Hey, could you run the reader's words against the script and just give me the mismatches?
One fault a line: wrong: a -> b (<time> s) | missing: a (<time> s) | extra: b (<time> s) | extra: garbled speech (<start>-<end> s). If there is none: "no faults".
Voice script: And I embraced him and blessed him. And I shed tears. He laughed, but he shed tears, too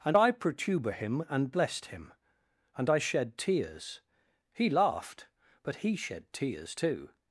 wrong: embraced -> protuber (0.3 s)